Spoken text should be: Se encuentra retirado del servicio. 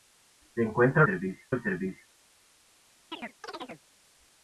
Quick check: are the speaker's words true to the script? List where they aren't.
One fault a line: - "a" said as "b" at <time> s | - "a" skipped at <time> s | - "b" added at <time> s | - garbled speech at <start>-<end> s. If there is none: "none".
- "retirado" said as "servicio" at 1.0 s